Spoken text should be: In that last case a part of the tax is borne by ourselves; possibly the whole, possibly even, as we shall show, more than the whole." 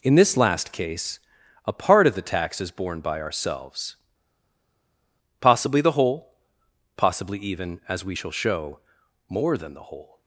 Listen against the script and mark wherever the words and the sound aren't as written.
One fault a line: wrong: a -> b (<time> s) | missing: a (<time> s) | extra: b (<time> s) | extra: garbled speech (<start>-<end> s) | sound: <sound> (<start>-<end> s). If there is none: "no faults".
wrong: that -> this (0.1 s)